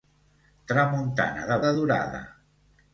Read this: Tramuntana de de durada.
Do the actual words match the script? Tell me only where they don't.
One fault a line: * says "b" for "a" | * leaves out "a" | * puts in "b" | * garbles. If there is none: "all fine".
all fine